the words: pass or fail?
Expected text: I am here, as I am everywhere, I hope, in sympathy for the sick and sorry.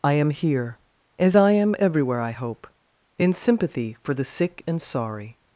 pass